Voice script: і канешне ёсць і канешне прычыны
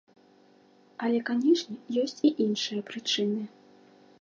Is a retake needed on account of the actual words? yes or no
yes